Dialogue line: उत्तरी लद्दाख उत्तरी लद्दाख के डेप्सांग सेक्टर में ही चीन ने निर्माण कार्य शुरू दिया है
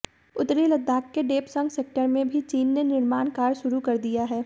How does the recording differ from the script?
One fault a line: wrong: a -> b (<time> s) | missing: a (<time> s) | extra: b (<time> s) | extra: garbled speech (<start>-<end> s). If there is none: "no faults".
missing: उत्तरी लद्दाख (1.1 s)
wrong: ही -> भी (2.3 s)
extra: कर (3.8 s)